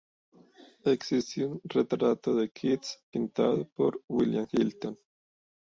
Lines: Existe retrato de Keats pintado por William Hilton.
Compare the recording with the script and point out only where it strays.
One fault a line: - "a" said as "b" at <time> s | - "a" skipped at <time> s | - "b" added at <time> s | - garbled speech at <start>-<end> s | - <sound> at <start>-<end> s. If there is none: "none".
- "un" added at 1.4 s